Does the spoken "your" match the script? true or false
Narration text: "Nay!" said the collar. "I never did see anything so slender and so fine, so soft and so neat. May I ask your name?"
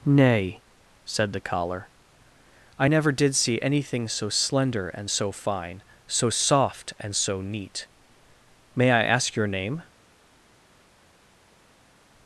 true